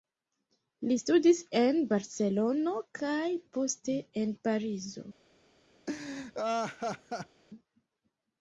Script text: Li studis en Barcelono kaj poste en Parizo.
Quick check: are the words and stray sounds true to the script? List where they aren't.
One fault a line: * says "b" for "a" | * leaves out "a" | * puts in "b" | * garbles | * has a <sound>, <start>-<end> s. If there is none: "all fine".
* has a laugh, 5.9-7.4 s